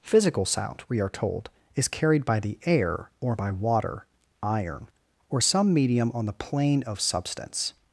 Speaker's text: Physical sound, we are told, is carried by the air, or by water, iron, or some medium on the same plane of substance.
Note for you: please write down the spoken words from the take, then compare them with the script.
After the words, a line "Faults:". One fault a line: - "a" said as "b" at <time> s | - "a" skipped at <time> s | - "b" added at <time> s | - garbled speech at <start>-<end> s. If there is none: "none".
Physical sound, we are told, is carried by the air, or by water, iron, or some medium on the plane of substance.
Faults:
- "same" skipped at 6.3 s